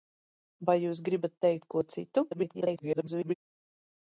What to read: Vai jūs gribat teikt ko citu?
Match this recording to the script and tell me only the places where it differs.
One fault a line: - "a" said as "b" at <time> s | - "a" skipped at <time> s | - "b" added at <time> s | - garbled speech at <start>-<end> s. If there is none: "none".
- garbled speech at 2.3-3.3 s